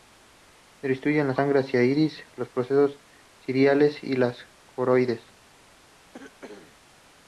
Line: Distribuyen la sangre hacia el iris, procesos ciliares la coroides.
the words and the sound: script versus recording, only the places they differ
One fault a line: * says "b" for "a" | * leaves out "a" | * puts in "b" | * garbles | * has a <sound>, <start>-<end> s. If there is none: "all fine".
* puts in "los"
* puts in "y"
* has a cough, 6.1-6.8 s